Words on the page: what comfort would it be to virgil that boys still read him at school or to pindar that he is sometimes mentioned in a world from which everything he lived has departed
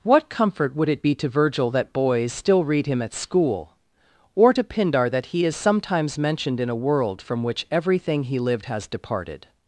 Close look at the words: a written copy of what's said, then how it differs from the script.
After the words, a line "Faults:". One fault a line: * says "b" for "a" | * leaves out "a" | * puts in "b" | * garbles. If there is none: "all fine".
what comfort would it be to virgil that boys still read him at school or to pindar that he is sometimes mentioned in a world from which everything he lived has departed
Faults:
all fine